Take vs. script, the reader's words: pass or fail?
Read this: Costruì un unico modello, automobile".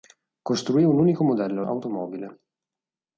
pass